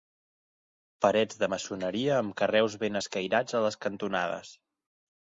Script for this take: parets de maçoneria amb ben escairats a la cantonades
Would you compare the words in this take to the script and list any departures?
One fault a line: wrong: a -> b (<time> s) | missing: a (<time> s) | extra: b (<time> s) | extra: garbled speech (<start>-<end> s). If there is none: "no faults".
extra: carreus (2.4 s)
wrong: la -> les (3.7 s)